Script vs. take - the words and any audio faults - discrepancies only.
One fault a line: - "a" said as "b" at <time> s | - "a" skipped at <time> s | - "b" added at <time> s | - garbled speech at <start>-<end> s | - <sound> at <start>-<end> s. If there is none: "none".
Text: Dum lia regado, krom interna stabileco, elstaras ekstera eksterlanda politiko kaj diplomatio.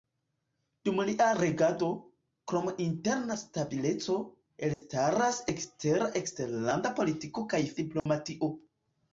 - dropout at 4.7-4.8 s
- dropout at 8.0-8.1 s